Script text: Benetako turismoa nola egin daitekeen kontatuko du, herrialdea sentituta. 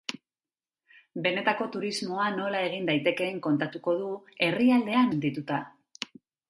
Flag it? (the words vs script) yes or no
no